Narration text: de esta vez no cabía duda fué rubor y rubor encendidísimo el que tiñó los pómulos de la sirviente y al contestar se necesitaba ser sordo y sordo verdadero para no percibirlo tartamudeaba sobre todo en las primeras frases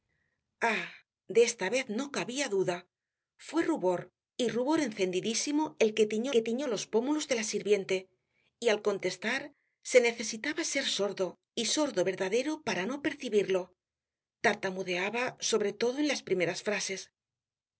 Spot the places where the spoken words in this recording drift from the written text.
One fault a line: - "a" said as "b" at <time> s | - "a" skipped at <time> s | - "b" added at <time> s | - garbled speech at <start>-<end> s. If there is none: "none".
- "que tiñó" added at 6.3 s